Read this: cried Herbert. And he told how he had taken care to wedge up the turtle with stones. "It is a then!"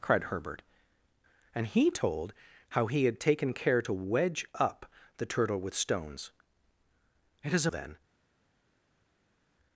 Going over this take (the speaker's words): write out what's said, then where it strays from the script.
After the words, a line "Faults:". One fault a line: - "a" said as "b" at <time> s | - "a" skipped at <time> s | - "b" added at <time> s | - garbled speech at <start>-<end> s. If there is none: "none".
cried Herbert. And he told how he had taken care to wedge up the turtle with stones. "It is a then!"
Faults:
none